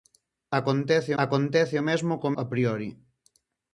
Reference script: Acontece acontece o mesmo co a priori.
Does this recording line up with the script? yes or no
yes